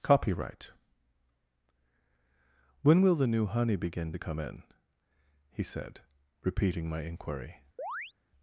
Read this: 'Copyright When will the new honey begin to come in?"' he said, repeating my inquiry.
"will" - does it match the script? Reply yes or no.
yes